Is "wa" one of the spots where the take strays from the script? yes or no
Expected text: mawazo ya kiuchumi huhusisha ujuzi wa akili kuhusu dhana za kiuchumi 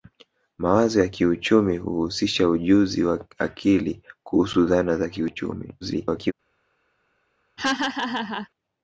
no